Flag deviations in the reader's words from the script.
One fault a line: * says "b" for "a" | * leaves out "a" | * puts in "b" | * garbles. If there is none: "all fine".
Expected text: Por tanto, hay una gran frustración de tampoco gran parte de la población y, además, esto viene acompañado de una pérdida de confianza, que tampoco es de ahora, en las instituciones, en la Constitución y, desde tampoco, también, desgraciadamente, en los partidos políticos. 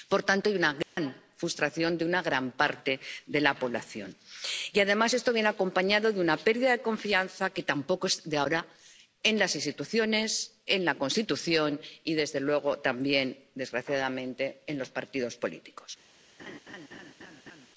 * says "una" for "tampoco"
* says "luego" for "tampoco"